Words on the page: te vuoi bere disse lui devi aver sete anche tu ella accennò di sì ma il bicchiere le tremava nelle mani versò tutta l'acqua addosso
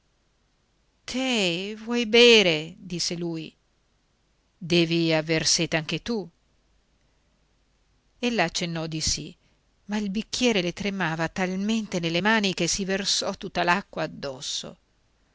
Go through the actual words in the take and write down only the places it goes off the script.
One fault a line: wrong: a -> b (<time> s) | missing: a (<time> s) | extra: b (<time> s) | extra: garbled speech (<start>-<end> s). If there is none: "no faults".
extra: talmente (11.3 s)
extra: che si (12.5 s)